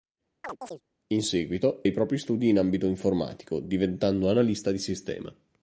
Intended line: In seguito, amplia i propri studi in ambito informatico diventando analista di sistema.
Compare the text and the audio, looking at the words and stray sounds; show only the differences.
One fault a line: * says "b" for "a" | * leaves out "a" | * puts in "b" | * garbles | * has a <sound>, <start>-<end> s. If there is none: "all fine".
* has a chirp, 0.4-0.8 s
* leaves out "amplia"